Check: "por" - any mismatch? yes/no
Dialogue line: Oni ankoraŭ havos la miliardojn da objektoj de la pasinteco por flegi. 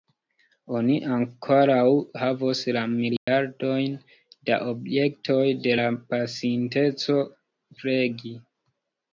yes